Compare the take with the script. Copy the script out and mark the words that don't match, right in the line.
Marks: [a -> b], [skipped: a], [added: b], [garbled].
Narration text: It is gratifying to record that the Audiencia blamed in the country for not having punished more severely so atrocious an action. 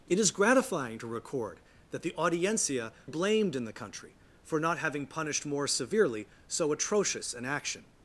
It is gratifying to record that the Audiencia blamed in the country for not having punished more severely so atrocious an action.